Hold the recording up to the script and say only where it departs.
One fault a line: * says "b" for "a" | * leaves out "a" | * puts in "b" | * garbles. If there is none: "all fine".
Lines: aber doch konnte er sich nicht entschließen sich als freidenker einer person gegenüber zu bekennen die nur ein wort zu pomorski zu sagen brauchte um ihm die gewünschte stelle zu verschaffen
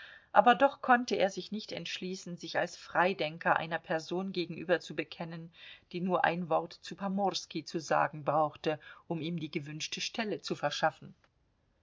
all fine